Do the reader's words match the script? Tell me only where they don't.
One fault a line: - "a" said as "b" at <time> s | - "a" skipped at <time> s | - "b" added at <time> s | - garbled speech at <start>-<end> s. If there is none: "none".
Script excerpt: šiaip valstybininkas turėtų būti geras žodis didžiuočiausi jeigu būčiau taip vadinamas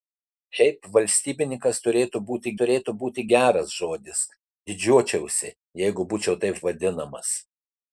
- "turėtų būti" added at 2.6 s